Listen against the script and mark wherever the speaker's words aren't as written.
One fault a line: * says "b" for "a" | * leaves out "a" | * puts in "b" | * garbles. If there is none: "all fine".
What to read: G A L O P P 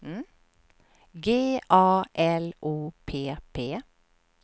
all fine